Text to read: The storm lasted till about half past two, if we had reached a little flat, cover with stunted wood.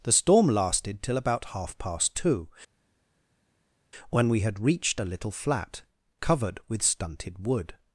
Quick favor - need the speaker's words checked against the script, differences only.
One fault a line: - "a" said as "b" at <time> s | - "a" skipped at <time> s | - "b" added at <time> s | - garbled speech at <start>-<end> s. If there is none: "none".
- "if" said as "when" at 4.1 s
- "cover" said as "covered" at 6.2 s